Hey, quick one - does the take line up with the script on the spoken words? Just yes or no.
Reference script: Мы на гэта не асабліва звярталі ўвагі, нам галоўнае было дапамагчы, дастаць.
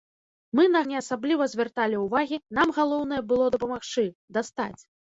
no